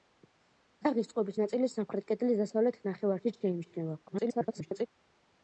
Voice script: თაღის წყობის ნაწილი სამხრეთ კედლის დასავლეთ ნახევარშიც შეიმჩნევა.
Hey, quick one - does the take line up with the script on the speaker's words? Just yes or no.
no